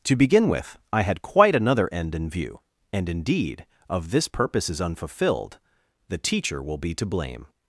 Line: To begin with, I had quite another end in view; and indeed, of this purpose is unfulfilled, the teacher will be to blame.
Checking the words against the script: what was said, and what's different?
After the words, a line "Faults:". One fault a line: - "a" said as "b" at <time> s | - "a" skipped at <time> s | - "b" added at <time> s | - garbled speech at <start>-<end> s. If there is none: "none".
To begin with, I had quite another end in view; and indeed, of this purpose is unfulfilled, the teacher will be to blame.
Faults:
none